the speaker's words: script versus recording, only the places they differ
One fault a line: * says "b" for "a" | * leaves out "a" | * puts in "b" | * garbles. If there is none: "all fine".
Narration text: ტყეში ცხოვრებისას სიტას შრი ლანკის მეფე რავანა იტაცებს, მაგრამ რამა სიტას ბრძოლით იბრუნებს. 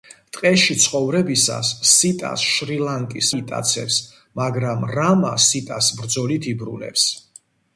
* leaves out "მეფე რავანა"